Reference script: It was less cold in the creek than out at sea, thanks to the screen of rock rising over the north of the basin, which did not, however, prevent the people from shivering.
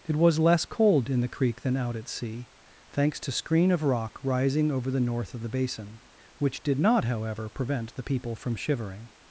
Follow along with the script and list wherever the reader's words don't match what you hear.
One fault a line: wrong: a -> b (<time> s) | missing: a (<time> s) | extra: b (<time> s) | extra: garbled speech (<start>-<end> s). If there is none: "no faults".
missing: the (3.3 s)